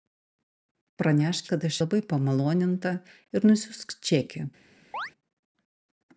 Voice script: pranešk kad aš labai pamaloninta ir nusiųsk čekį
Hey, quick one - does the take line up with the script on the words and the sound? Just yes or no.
no